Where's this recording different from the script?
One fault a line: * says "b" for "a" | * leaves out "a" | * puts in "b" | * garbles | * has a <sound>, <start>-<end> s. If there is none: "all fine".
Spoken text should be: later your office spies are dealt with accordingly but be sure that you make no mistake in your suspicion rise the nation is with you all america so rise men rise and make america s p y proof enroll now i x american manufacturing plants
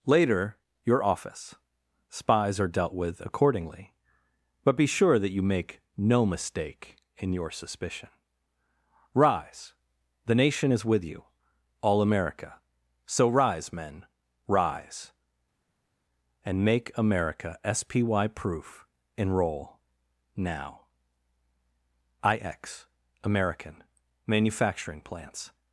all fine